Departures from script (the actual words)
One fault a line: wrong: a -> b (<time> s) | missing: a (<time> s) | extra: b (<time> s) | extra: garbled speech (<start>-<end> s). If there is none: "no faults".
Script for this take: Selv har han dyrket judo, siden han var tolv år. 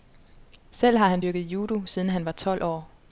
no faults